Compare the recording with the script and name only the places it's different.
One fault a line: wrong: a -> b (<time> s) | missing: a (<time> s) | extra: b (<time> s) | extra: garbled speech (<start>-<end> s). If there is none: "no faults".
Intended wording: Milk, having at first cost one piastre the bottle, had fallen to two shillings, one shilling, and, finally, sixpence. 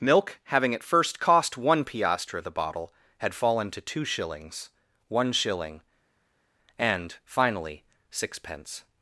no faults